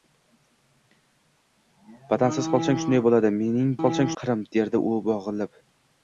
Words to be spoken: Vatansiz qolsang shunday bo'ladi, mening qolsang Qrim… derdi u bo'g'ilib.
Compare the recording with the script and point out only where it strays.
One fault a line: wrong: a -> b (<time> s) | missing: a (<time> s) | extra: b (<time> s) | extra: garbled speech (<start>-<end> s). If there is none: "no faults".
no faults